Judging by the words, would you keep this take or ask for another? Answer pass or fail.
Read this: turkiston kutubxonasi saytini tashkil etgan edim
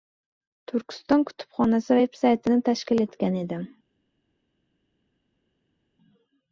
fail